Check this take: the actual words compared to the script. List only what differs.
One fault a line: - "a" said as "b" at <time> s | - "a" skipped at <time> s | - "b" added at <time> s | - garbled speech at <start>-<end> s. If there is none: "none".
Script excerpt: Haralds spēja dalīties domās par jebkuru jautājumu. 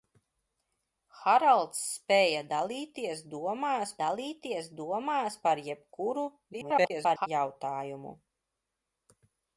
- "dalīties domās" added at 4.0 s
- garbled speech at 6.5-7.3 s